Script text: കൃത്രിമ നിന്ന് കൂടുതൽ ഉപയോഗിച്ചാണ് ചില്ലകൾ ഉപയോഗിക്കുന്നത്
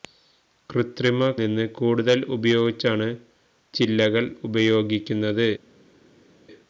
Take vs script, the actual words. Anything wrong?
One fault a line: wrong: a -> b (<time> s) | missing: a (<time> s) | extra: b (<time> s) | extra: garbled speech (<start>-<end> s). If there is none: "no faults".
no faults